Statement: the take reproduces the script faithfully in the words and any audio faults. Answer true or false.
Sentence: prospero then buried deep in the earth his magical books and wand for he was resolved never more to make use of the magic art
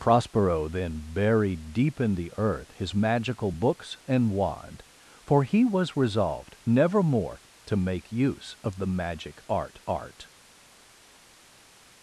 false